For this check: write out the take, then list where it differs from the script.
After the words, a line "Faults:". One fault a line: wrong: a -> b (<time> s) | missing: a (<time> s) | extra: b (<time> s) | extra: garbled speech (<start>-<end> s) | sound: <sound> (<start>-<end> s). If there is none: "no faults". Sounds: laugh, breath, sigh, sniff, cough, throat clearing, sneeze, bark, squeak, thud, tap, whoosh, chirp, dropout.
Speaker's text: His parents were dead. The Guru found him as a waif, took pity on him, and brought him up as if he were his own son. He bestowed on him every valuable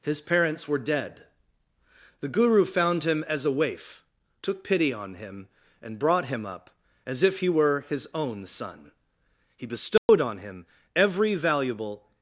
His parents were dead. The Guru found him as a waif, took pity on him, and brought him up as if he were his own son. He bestowed on him every valuable
Faults:
sound: dropout (10.0-10.1 s)